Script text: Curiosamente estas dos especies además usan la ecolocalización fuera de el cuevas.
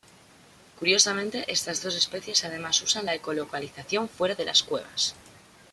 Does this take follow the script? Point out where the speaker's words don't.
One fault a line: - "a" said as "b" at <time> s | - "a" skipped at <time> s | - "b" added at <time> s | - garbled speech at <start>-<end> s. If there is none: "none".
- "el" said as "las" at 4.4 s